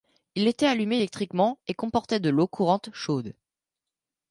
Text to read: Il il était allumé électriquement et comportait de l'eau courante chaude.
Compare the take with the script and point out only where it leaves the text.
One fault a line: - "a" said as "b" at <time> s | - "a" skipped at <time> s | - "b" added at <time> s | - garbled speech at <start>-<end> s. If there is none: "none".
- "il" skipped at 0.5 s